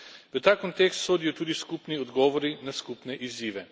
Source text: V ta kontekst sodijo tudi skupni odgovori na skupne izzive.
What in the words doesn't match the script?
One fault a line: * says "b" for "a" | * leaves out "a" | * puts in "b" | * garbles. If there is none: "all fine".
all fine